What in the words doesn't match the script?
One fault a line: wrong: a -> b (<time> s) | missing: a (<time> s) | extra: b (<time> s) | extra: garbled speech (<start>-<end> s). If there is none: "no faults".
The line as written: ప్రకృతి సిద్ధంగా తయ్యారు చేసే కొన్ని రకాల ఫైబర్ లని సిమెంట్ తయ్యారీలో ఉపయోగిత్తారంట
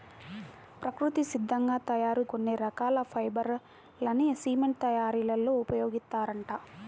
missing: చేసే (2.2 s)